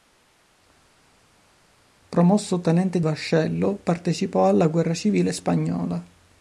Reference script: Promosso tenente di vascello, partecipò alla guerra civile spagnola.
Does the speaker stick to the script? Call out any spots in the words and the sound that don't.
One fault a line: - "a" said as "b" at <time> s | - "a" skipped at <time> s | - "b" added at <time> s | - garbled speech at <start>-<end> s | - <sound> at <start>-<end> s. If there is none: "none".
- "di" skipped at 3.0 s